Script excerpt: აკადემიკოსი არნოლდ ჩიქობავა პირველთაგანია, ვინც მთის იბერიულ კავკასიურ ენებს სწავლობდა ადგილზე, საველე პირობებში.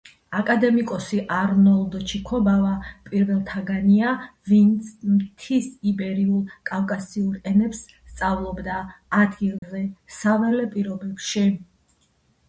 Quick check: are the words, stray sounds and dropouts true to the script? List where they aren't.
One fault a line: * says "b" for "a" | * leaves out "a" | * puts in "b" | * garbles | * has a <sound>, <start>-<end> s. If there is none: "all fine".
* has a dropout, 9.6-9.6 s